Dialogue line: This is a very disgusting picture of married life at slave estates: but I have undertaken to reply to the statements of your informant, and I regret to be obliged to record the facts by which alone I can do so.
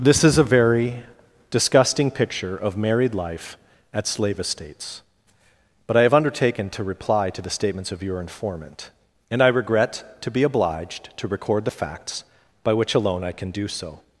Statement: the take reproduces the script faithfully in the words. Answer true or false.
true